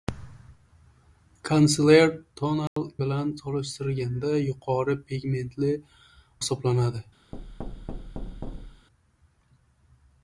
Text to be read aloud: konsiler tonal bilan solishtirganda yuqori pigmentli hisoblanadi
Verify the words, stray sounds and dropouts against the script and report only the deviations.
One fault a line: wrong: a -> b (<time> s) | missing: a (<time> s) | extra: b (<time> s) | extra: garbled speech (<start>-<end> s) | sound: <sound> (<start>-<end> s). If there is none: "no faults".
sound: dropout (2.7-2.8 s)
sound: thud (7.3-8.9 s)